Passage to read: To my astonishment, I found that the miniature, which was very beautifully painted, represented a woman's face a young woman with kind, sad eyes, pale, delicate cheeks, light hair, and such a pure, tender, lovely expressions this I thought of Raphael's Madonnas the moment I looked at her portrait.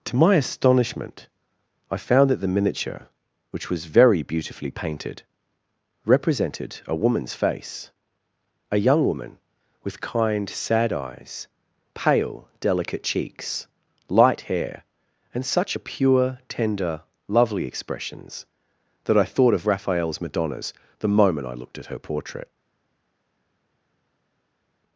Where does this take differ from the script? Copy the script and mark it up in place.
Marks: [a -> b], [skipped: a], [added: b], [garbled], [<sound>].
To my astonishment, I found that the miniature, which was very beautifully painted, represented a woman's face a young woman with kind, sad eyes, pale, delicate cheeks, light hair, and such a pure, tender, lovely expressions [this -> that] I thought of Raphael's Madonnas the moment I looked at her portrait.